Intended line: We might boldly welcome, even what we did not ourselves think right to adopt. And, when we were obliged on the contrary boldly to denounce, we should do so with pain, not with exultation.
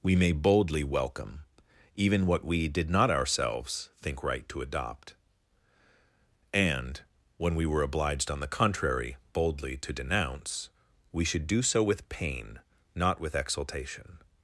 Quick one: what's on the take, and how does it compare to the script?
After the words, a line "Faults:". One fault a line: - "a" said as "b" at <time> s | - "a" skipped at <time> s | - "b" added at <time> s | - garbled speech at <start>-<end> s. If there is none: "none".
We may boldly welcome, even what we did not ourselves think right to adopt. And, when we were obliged on the contrary boldly to denounce, we should do so with pain, not with exultation.
Faults:
- "might" said as "may" at 0.1 s